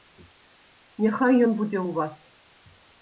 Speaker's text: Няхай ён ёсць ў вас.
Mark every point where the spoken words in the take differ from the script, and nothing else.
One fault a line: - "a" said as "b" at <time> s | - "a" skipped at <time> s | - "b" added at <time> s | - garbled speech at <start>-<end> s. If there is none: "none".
- "ёсць" said as "будзе" at 1.6 s